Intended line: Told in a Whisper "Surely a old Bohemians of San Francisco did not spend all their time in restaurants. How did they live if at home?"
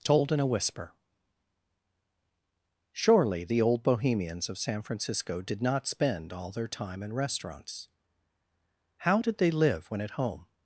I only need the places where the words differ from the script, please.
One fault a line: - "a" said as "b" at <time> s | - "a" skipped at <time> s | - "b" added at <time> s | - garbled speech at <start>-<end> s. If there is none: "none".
- "a" said as "the" at 3.4 s
- "if" said as "when" at 9.9 s